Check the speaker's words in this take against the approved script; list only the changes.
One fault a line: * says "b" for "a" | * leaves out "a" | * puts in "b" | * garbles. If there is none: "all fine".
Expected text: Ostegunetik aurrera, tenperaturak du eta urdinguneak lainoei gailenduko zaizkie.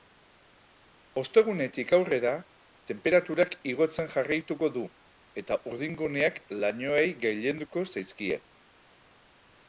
* puts in "igotzen jarraituko"